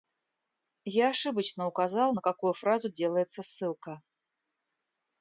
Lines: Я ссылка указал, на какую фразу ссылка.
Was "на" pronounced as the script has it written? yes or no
yes